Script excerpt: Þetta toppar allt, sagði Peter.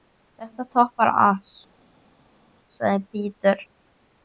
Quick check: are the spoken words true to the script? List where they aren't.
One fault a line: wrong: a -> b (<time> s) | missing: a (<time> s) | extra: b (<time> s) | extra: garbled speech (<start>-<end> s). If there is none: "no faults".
no faults